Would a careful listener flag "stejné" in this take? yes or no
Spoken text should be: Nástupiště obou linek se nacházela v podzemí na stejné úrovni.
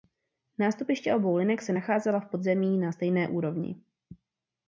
no